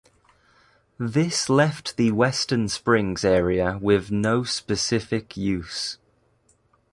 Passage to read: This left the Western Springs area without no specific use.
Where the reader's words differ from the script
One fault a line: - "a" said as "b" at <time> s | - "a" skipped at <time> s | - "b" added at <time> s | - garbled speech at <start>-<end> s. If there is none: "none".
- "without" said as "with" at 3.8 s